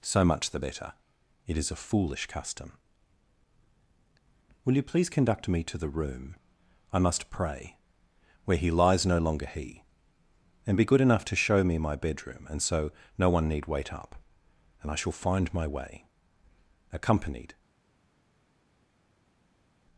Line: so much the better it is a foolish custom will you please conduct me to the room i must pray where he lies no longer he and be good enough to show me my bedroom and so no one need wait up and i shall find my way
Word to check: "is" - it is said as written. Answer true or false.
true